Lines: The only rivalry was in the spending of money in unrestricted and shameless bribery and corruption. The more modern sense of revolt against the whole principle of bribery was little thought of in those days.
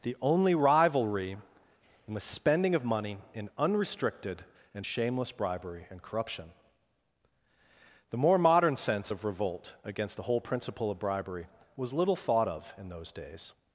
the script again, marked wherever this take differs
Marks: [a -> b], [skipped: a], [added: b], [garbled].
The only rivalry [skipped: was] in the spending of money in unrestricted and shameless bribery and corruption. The more modern sense of revolt against the whole principle of bribery was little thought of in those days.